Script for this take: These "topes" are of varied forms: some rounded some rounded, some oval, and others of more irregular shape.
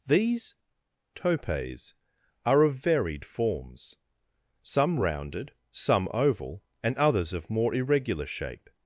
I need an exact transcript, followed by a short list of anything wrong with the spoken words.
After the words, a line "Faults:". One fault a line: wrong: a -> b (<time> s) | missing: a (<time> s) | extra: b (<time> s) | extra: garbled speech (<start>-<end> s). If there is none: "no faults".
These "topes" are of varied forms: some rounded, some oval, and others of more irregular shape.
Faults:
missing: rounded some (6.1 s)